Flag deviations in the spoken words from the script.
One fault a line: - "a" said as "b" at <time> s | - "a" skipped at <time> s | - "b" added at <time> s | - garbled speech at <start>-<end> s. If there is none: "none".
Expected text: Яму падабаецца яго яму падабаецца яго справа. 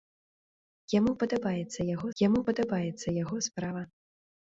none